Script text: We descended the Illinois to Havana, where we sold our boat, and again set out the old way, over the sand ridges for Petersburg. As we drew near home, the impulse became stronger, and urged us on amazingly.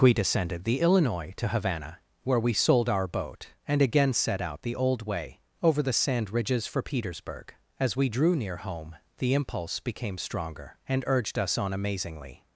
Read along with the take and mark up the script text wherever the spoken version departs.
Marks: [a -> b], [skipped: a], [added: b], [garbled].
We descended the Illinois to Havana, where we sold our boat, and again set out the old way, over the sand ridges for Petersburg. As we drew near home, the impulse became stronger, and urged us on amazingly.